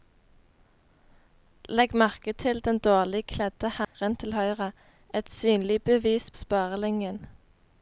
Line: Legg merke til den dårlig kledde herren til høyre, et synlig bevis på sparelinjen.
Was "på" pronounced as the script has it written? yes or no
no